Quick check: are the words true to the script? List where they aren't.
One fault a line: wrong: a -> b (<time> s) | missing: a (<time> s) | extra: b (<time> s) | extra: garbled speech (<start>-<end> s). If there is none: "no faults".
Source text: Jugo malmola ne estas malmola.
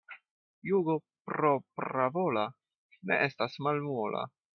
wrong: malmola -> propravola (1.3 s)